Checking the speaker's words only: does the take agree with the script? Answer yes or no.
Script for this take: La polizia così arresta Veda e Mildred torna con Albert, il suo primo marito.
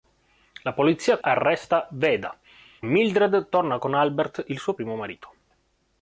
no